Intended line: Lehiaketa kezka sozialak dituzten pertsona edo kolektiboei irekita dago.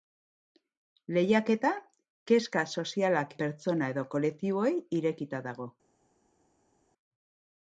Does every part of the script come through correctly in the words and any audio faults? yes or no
no